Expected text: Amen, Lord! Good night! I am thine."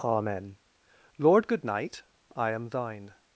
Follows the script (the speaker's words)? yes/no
yes